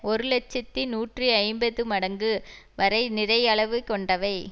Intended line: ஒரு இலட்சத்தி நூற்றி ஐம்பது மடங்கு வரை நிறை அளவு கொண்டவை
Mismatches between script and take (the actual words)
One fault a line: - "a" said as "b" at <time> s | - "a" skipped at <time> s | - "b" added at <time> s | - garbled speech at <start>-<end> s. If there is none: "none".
none